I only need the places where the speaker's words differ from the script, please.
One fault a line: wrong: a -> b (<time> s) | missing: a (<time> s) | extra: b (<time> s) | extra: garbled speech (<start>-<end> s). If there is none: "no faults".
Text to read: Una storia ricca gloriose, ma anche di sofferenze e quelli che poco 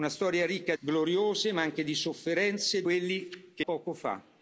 no faults